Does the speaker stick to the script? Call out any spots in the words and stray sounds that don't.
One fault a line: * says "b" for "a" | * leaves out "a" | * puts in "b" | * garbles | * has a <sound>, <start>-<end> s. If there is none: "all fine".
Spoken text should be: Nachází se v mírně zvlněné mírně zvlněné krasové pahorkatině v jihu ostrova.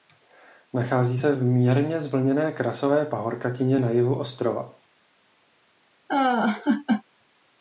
* leaves out "mírně zvlněné"
* says "na" for "v"
* has a laugh, 6.1-7.0 s